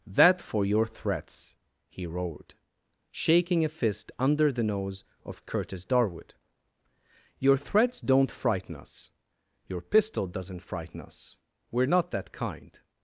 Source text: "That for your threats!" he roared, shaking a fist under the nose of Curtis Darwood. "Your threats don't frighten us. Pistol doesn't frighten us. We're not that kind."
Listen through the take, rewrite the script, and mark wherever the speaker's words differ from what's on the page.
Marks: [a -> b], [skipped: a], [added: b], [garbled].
"That for your threats!" he roared, shaking a fist under the nose of Curtis Darwood. "Your threats don't frighten us. [added: Your] Pistol doesn't frighten us. We're not that kind."